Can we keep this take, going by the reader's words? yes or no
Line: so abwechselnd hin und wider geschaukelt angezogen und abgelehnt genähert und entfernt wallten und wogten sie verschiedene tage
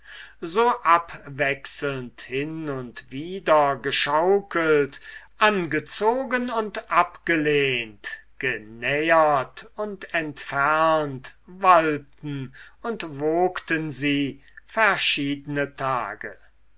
yes